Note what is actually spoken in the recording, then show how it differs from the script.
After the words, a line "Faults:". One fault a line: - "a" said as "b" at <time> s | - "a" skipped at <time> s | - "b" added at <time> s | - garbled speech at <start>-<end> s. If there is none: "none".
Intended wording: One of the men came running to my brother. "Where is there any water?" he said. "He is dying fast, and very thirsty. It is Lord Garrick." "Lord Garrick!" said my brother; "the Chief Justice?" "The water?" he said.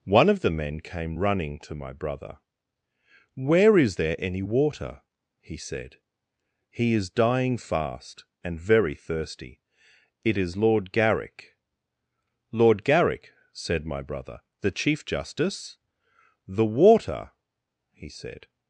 One of the men came running to my brother. "Where is there any water?" he said. "He is dying fast, and very thirsty. It is Lord Garrick." "Lord Garrick!" said my brother; "the Chief Justice?" "The water?" he said.
Faults:
none